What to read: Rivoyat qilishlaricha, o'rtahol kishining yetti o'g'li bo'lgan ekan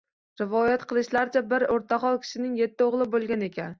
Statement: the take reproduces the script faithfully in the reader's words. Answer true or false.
false